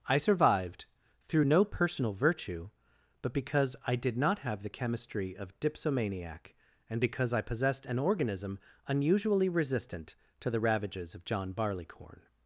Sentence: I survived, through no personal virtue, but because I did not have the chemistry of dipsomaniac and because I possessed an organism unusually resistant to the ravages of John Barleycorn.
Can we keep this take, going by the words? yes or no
yes